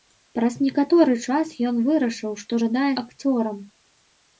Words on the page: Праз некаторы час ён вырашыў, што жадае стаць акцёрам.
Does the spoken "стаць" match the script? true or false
false